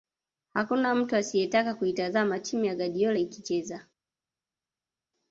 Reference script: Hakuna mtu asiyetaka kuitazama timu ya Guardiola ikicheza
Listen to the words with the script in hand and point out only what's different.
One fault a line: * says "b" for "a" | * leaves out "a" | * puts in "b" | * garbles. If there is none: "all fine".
all fine